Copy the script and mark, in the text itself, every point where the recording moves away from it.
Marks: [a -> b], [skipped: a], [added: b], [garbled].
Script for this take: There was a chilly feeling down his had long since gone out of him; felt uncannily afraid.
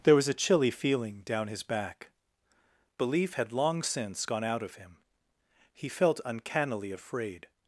There was a chilly feeling down his [added: back Belief] had long since gone out of him; [added: he] felt uncannily afraid.